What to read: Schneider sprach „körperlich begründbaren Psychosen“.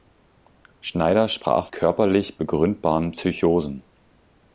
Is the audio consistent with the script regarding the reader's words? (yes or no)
yes